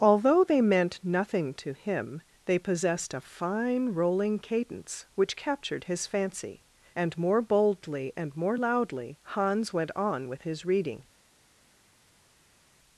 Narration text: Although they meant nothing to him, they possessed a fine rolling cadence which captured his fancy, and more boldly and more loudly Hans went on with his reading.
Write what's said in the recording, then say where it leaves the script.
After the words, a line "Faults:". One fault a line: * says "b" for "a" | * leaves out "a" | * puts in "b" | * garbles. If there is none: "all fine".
Although they meant nothing to him, they possessed a fine rolling cadence which captured his fancy, and more boldly and more loudly Hans went on with his reading.
Faults:
all fine